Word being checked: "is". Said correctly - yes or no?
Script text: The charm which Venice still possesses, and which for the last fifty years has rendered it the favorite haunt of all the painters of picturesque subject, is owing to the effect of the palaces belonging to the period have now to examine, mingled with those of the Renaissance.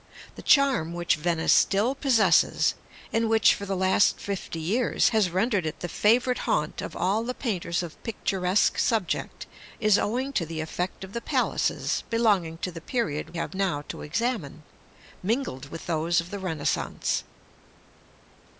yes